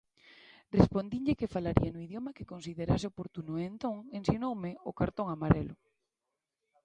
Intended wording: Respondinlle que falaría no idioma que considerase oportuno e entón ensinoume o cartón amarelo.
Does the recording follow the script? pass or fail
pass